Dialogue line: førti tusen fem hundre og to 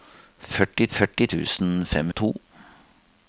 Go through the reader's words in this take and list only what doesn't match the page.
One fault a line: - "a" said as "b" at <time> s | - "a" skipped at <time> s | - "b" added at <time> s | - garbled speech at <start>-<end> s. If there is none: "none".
- "førti" added at 0.9 s
- "hundre" skipped at 2.1 s